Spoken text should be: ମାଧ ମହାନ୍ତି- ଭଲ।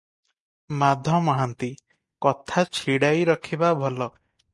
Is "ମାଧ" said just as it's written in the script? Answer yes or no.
yes